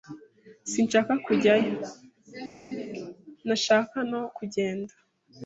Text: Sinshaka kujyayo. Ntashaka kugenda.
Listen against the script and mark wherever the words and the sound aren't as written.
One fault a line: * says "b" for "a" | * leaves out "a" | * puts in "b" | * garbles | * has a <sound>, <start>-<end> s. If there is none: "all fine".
* puts in "no"